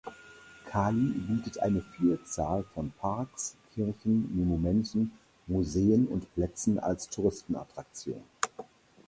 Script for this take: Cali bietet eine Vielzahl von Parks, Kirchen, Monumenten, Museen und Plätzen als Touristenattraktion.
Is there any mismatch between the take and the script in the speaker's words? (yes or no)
no